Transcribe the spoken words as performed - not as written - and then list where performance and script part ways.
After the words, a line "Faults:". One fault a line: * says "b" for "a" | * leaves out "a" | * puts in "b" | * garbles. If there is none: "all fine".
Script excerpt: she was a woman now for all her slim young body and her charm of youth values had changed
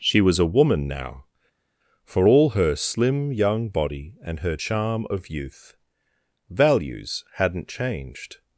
she was a woman now for all her slim young body and her charm of youth values hadn't changed
Faults:
* says "hadn't" for "had"